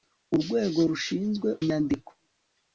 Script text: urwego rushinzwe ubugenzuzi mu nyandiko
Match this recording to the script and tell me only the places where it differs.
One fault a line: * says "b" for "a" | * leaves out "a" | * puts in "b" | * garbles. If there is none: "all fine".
* leaves out "ubugenzuzi mu"